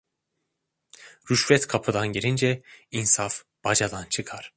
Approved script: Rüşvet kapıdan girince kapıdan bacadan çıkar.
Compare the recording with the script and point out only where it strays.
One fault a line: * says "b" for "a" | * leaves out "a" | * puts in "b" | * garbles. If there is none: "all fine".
* says "insaf" for "kapıdan"